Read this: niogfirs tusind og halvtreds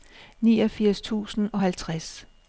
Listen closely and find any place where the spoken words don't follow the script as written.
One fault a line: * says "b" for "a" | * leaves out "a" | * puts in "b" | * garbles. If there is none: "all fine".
all fine